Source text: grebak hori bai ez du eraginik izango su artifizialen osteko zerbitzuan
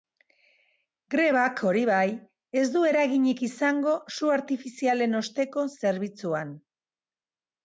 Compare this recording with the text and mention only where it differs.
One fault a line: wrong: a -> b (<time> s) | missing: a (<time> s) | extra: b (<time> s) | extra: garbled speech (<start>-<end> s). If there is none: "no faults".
no faults